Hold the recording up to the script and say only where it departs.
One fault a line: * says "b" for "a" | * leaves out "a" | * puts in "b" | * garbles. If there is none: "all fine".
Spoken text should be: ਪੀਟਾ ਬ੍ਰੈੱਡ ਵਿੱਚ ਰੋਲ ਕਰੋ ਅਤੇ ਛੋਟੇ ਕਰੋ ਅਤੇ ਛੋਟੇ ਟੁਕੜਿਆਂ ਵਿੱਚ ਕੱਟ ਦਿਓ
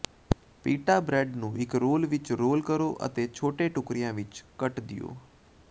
* says "ਨੂੰ ਇੱਕ" for "ਵਿੱਚ"
* says "ਵਿੱਚ ਰੋਲ" for "ਕਰੋ ਅਤੇ ਛੋਟੇ"